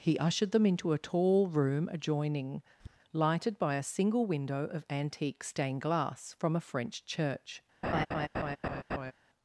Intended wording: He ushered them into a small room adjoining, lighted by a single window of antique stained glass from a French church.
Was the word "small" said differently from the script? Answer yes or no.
yes